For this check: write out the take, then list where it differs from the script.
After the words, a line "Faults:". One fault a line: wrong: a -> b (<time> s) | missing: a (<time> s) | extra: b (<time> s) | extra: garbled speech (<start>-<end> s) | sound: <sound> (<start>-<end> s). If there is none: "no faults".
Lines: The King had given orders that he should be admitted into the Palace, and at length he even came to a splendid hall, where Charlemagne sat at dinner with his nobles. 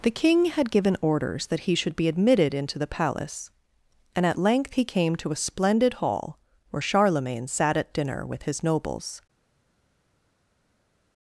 The King had given orders that he should be admitted into the Palace, and at length he came to a splendid hall, where Charlemagne sat at dinner with his nobles.
Faults:
missing: even (4.9 s)